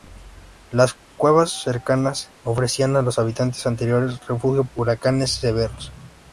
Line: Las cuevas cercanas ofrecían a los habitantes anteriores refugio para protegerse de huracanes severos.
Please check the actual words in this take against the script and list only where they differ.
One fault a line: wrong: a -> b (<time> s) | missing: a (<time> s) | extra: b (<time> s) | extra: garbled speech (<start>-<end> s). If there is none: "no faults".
missing: para protegerse de (4.7 s)